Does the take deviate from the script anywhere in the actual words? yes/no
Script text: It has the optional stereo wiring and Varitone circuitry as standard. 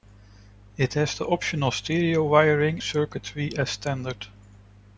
yes